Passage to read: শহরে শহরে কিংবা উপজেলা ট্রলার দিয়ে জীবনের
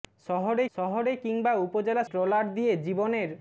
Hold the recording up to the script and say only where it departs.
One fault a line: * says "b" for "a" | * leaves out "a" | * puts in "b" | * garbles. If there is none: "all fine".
all fine